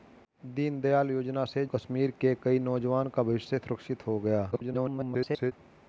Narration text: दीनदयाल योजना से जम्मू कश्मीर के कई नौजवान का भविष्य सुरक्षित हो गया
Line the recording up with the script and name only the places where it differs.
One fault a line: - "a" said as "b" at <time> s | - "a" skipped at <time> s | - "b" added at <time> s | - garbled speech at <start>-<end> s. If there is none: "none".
- "जम्मू" skipped at 1.6 s
- garbled speech at 4.5-5.5 s